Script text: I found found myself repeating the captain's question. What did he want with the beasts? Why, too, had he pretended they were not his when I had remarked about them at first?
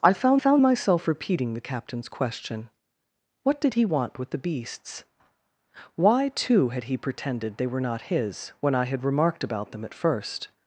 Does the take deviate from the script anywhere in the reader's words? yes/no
no